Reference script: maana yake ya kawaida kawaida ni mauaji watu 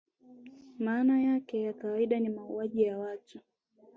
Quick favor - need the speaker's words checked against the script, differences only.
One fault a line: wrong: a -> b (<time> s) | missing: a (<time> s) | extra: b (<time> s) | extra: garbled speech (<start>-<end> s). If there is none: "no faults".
missing: kawaida (2.2 s)
extra: ya (2.8 s)